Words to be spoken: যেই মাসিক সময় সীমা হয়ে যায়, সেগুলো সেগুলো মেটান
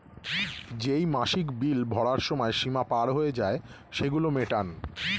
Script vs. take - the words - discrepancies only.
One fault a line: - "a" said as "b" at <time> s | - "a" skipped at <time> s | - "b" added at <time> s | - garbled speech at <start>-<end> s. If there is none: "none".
- "বিল ভরার" added at 1.6 s
- "পার" added at 2.8 s
- "সেগুলো" skipped at 4.3 s